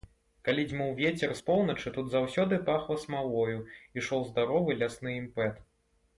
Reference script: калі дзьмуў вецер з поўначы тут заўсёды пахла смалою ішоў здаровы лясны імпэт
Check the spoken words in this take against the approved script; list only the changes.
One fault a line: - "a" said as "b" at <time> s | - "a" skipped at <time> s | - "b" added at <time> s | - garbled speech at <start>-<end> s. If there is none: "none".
none